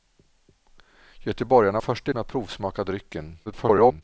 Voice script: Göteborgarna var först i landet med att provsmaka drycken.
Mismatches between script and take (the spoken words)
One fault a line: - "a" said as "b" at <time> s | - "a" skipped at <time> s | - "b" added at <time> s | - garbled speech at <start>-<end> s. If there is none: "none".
- "var" skipped at 1.8 s
- "landet" skipped at 2.1 s
- garbled speech at 3.5-4.0 s